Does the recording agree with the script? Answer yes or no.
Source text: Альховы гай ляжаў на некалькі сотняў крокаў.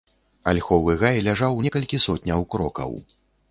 no